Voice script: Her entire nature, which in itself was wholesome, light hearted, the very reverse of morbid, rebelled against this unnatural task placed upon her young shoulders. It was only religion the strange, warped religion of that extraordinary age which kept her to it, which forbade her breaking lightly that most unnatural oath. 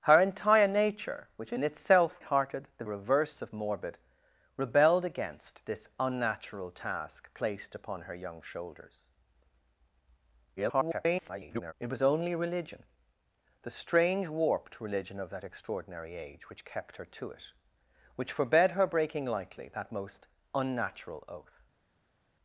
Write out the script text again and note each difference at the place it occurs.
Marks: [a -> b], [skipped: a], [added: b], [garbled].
Her entire nature, which in itself [skipped: was wholesome, light] hearted, the [skipped: very] reverse of morbid, rebelled against this unnatural task placed upon her young shoulders. [garbled] It was only religion the strange, warped religion of that extraordinary age which kept her to it, which forbade her breaking lightly that most unnatural oath.